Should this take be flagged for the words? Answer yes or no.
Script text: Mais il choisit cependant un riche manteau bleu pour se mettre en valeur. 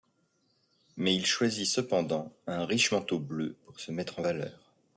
no